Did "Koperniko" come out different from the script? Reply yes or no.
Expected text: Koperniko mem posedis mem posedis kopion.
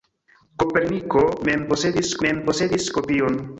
no